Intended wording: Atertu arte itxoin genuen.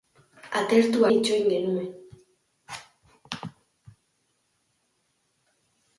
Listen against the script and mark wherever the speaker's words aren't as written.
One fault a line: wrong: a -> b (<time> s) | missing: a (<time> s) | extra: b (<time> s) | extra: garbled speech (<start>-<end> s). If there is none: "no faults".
missing: arte (1.1 s)